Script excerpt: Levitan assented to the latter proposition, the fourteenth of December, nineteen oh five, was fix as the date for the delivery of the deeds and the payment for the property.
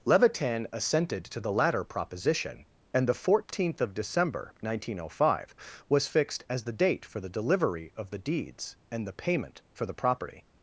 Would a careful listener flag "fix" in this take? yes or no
yes